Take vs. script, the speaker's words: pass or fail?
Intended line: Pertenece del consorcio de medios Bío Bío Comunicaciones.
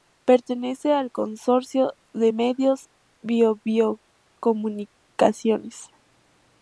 fail